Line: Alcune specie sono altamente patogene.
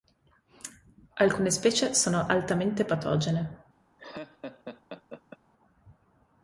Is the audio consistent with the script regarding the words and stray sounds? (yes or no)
no